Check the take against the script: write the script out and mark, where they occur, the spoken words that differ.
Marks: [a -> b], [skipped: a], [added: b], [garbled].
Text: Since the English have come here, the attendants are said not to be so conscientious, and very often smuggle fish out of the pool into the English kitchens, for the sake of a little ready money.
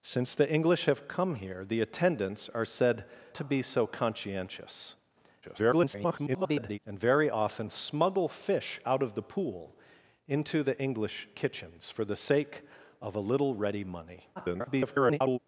Since the English have come here, the attendants are said [skipped: not] to be so conscientious, [garbled] and very often smuggle fish out of the pool into the English kitchens, for the sake of a little ready money. [garbled]